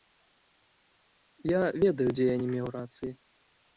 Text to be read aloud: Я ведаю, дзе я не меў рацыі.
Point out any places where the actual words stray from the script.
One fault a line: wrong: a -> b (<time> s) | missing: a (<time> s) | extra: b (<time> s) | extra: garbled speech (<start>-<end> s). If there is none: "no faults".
no faults